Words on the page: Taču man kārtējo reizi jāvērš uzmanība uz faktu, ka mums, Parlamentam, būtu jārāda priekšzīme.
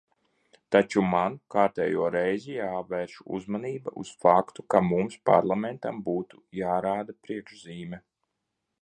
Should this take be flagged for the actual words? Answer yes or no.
no